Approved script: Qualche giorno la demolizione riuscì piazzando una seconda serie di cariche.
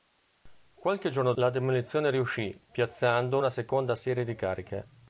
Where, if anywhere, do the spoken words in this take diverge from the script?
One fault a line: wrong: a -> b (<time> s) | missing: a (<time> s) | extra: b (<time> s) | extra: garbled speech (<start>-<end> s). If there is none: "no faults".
no faults